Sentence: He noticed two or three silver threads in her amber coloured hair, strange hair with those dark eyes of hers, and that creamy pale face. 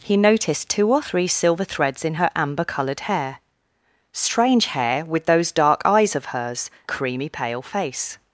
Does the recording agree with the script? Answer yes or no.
no